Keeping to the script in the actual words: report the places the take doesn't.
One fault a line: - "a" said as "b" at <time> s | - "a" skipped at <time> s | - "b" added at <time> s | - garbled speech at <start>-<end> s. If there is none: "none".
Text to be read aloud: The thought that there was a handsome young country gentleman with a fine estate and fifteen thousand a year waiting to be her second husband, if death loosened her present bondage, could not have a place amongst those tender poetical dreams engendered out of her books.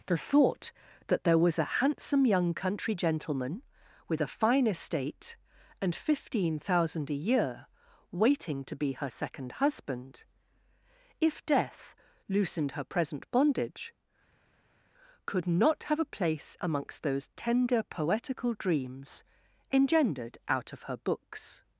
none